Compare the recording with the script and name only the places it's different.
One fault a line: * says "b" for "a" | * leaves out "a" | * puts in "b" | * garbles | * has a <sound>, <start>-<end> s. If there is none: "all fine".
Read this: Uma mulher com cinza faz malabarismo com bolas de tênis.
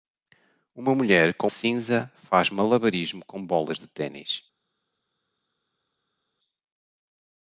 all fine